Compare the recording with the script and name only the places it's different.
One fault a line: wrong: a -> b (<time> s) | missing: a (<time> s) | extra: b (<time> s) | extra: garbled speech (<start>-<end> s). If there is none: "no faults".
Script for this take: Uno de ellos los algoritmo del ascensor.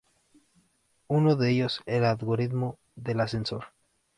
wrong: los -> el (1.9 s)